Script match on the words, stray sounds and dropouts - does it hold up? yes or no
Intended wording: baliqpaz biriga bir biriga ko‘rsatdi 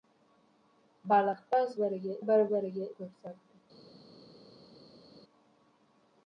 yes